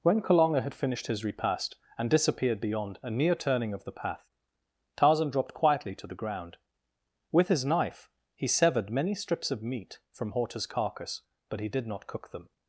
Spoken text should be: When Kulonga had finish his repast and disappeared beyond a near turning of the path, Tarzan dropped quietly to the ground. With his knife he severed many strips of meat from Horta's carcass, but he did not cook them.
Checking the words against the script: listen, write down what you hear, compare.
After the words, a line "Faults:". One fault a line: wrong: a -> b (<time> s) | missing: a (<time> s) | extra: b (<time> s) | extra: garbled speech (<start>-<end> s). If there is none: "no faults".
When Kulonga had finished his repast and disappeared beyond a near turning of the path, Tarzan dropped quietly to the ground. With his knife he severed many strips of meat from Horta's carcass, but he did not cook them.
Faults:
wrong: finish -> finished (0.7 s)